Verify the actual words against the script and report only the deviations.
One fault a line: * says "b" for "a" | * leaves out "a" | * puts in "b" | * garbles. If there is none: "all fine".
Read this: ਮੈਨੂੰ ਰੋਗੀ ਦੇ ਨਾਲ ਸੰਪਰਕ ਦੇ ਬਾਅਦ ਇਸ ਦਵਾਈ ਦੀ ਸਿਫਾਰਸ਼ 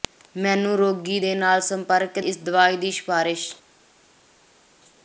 * leaves out "ਦੇ ਬਾਅਦ"